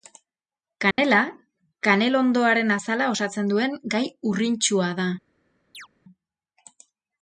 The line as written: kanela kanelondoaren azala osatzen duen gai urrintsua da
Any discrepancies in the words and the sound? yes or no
yes